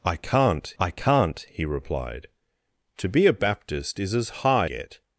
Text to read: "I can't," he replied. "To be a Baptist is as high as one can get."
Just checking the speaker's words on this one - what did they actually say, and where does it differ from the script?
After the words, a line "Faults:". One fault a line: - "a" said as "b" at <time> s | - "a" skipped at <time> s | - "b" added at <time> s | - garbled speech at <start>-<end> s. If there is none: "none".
"I can't I can't," he replied. "To be a Baptist is as high get."
Faults:
- "I can't" added at 0.8 s
- "as one can" skipped at 4.7 s